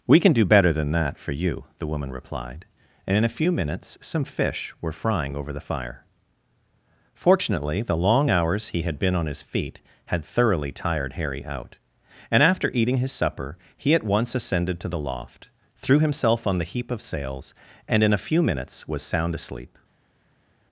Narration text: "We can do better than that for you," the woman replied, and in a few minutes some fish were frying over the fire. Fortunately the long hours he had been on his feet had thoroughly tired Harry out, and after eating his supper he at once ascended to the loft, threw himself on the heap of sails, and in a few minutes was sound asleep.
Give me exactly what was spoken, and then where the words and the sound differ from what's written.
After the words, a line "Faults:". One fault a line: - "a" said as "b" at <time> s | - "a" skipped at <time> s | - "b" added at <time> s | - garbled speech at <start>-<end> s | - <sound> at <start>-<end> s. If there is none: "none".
"We can do better than that for you," the woman replied, and in a few minutes some fish were frying over the fire. Fortunately the long hours he had been on his feet had thoroughly tired Harry out, and after eating his supper he at once ascended to the loft, threw himself on the heap of sails, and in a few minutes was sound asleep.
Faults:
none